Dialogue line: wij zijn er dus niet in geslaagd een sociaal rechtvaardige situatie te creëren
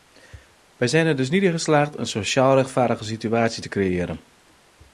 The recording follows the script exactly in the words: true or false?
true